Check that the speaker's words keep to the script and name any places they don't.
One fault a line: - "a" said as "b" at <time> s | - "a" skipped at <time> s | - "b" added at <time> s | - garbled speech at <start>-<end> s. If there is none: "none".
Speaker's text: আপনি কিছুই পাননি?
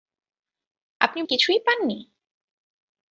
none